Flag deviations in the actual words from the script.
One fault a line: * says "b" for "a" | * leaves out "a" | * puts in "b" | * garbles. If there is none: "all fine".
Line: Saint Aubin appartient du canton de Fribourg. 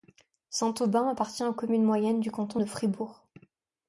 * puts in "aux communes moyennes"